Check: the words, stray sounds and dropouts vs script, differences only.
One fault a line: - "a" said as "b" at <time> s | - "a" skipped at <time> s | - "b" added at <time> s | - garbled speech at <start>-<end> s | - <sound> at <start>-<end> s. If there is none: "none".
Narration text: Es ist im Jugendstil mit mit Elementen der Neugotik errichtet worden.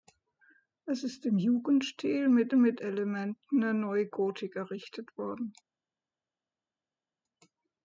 none